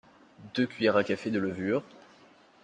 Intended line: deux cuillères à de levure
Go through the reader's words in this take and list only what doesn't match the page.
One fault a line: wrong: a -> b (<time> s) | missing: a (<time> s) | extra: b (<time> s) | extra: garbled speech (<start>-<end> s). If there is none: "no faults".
extra: café (1.0 s)